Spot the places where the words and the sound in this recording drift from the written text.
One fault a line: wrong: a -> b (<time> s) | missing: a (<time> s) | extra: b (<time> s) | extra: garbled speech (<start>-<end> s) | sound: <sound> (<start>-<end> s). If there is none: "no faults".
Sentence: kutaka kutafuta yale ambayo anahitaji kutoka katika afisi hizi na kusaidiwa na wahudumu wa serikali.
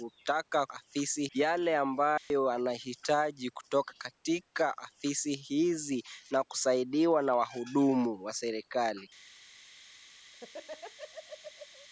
wrong: kutafuta -> afisi (0.7 s)
sound: dropout (2.2-2.3 s)
sound: laugh (10.3-11.9 s)